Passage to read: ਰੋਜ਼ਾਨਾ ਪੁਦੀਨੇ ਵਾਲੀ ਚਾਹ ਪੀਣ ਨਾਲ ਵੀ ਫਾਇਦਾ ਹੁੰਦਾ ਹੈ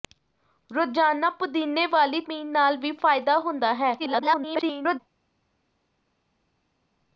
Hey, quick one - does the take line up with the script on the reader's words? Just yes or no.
no